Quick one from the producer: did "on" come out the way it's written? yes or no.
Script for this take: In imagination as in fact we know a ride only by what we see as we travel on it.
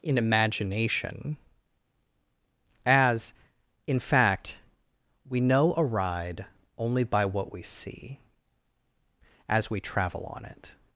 yes